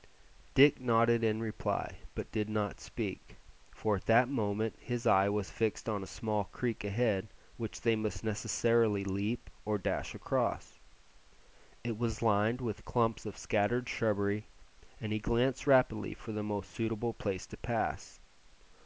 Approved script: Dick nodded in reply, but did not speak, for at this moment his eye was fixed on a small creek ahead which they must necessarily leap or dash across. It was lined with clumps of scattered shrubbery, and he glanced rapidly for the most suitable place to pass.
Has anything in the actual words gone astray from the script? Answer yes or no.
yes